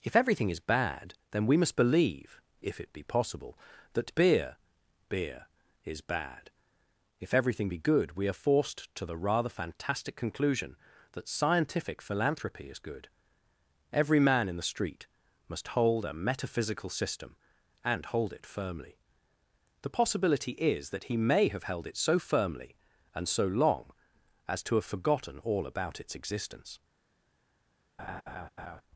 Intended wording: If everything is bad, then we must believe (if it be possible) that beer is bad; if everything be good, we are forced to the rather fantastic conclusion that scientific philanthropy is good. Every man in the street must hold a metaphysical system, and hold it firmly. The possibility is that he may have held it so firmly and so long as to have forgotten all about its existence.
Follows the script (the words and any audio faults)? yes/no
no